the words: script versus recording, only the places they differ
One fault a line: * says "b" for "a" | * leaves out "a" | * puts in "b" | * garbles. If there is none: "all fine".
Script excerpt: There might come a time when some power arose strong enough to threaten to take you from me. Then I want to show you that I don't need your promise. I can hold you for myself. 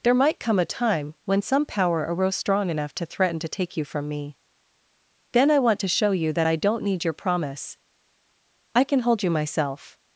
* leaves out "for"